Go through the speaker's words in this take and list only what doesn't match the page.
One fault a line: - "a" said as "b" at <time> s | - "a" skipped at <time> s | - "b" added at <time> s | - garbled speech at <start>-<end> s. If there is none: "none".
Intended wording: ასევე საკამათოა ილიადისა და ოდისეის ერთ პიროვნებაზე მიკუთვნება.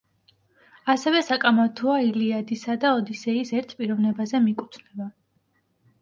none